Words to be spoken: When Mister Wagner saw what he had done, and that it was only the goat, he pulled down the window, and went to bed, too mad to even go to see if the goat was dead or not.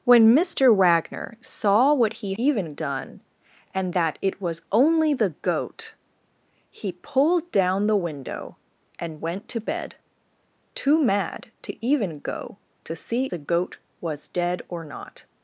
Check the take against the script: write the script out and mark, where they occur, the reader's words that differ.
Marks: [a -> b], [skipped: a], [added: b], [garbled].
When Mister Wagner saw what he [had -> even] done, and that it was only the goat, he pulled down the window, and went to bed, too mad to even go to see [skipped: if] the goat was dead or not.